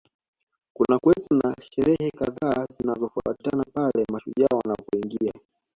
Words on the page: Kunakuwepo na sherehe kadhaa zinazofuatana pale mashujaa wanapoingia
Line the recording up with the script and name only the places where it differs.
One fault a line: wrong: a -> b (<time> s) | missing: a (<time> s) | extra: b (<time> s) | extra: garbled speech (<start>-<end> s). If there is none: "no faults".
no faults